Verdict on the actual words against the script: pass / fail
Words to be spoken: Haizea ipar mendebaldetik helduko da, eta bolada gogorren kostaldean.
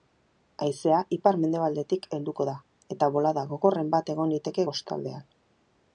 fail